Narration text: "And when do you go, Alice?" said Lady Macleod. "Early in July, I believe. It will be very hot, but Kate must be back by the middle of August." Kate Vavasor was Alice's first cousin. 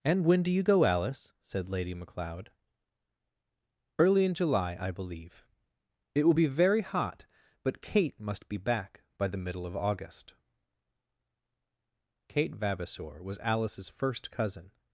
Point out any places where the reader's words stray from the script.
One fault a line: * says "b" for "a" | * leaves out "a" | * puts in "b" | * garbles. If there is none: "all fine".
all fine